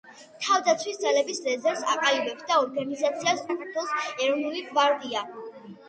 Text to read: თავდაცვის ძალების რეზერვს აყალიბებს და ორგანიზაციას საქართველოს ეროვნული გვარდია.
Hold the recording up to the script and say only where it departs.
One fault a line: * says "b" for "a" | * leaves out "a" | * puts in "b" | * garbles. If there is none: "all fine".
all fine